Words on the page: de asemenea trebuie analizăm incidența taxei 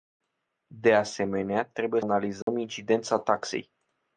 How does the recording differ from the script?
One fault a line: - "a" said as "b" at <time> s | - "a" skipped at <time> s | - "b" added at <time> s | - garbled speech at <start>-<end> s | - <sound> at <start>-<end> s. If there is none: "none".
- dropout at 2.4-2.5 s